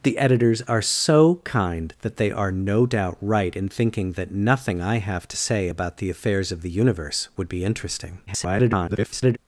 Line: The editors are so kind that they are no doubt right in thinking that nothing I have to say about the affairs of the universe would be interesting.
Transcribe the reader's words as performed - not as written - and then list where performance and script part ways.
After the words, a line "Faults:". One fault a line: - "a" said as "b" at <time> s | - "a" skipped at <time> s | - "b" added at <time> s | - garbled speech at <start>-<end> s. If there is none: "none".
The editors are so kind that they are no doubt right in thinking that nothing I have to say about the affairs of the universe would be interesting. [garbled]
Faults:
- garbled speech at 8.3-9.4 s